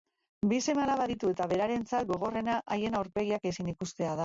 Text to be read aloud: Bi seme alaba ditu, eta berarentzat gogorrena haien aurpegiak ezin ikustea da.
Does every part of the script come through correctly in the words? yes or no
yes